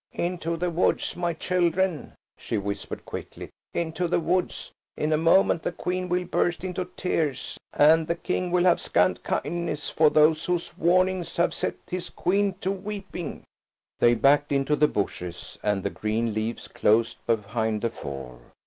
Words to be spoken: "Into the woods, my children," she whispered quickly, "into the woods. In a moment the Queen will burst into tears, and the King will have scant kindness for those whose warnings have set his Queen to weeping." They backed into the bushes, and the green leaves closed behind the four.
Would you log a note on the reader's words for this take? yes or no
no